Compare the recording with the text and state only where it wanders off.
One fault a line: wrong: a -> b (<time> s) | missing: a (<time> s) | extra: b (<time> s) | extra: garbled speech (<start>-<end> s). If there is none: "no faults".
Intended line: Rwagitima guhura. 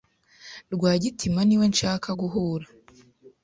extra: niwe nshaka (1.4 s)